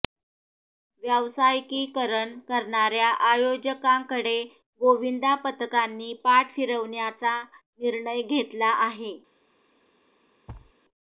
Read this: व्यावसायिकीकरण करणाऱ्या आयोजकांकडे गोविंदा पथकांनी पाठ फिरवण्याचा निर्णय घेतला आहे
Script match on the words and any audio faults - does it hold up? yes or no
no